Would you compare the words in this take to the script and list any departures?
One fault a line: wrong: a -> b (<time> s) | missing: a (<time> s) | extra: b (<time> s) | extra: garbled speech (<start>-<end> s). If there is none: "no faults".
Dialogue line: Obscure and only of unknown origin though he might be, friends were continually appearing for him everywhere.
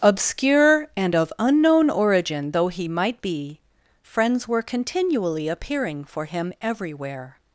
missing: only (1.1 s)